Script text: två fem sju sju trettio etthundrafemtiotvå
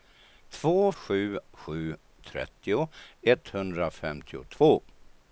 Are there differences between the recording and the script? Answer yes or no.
yes